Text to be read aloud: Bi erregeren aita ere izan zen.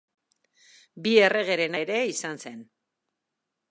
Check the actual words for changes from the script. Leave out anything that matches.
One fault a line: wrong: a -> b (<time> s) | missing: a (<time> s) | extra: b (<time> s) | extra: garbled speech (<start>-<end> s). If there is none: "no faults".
missing: aita (1.8 s)